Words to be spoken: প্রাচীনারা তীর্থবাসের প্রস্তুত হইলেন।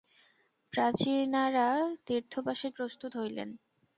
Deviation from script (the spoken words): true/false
false